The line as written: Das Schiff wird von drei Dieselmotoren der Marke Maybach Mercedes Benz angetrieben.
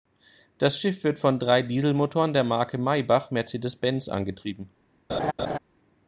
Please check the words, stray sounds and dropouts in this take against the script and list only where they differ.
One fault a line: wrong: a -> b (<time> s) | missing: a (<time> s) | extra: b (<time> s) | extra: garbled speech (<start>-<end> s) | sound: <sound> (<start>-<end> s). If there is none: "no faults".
sound: laugh (5.1-5.6 s)